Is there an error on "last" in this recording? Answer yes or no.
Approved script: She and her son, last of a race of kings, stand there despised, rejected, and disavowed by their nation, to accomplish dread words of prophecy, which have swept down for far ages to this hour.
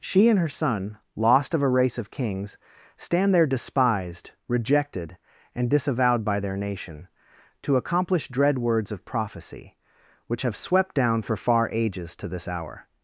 yes